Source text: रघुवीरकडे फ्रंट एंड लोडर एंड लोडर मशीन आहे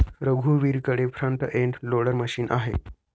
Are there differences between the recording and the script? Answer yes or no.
yes